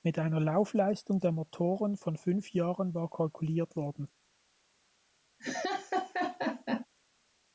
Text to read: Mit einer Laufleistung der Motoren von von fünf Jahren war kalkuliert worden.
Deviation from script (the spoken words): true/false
true